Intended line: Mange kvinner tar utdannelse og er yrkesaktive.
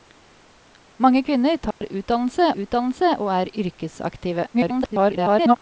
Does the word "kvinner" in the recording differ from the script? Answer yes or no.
no